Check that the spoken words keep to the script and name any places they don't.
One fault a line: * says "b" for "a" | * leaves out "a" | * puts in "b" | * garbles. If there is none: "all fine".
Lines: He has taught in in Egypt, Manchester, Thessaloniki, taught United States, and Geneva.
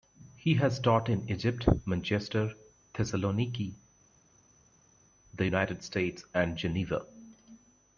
* leaves out "in"
* says "the" for "taught"